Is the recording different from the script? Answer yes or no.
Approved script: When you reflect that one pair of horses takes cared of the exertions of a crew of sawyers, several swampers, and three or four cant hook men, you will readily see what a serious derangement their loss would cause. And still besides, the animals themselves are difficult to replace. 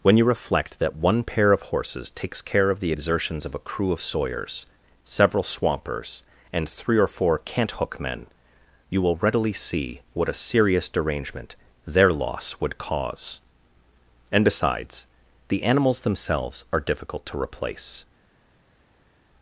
yes